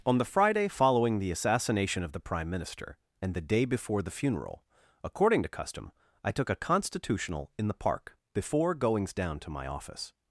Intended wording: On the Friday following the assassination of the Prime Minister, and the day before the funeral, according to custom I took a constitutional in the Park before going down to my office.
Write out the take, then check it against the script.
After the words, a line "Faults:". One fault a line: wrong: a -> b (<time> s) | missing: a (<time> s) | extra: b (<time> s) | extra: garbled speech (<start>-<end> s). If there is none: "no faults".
On the Friday following the assassination of the Prime Minister, and the day before the funeral, according to custom I took a constitutional in the Park before goings down to my office.
Faults:
wrong: going -> goings (8.7 s)